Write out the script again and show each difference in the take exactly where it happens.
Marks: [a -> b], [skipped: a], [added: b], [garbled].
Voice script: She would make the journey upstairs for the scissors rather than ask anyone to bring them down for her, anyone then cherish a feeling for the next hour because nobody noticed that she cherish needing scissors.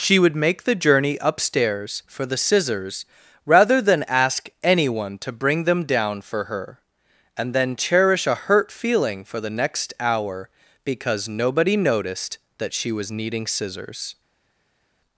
She would make the journey upstairs for the scissors rather than ask anyone to bring them down for her, [anyone -> and] then cherish a [added: hurt] feeling for the next hour because nobody noticed that she [cherish -> was] needing scissors.